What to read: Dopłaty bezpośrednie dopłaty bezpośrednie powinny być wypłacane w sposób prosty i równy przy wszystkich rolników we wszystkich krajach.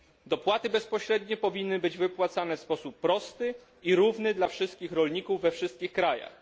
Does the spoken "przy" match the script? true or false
false